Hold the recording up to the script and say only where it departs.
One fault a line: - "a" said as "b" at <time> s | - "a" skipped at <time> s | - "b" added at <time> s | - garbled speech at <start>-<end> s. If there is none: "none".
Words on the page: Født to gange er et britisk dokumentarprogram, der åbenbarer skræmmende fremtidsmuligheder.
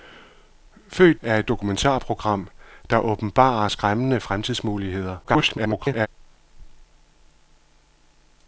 - "to gange" skipped at 1.2 s
- "britisk" skipped at 1.5 s
- garbled speech at 5.2-6.1 s